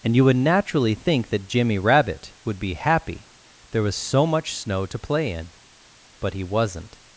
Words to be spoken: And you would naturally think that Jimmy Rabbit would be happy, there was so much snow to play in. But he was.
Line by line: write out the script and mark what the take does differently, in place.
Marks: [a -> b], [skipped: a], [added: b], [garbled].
And you would naturally think that Jimmy Rabbit would be happy, there was so much snow to play in. But he [was. -> wasn't]